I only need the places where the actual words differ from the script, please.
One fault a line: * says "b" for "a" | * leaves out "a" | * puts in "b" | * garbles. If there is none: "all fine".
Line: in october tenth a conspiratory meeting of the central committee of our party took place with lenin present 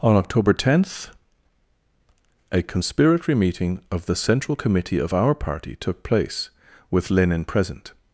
* says "on" for "in"